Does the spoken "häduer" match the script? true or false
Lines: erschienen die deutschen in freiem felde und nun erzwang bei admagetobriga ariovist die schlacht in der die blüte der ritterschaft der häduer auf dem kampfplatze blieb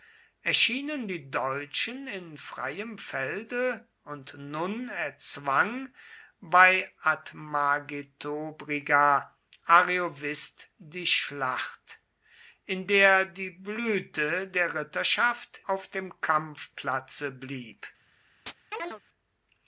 false